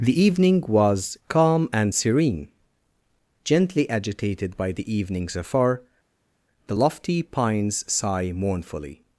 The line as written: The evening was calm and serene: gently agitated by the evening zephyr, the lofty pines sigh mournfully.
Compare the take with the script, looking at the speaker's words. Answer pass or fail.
pass